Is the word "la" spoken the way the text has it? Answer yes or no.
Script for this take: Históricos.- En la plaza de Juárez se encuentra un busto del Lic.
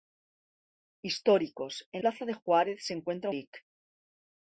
no